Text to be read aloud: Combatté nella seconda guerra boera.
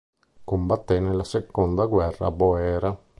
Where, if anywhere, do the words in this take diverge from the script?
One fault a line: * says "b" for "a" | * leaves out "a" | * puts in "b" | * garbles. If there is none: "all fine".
all fine